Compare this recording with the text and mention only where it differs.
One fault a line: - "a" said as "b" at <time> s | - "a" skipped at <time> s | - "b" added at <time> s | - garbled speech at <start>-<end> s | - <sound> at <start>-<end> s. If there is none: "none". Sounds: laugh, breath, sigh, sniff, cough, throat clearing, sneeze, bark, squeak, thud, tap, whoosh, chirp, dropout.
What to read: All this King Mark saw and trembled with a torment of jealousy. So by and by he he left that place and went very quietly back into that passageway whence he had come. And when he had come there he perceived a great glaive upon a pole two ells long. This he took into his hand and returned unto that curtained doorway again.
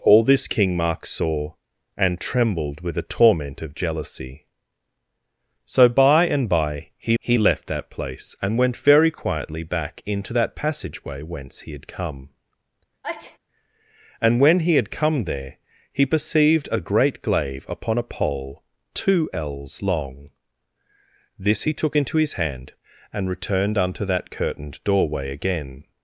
- sneeze at 13.0-13.4 s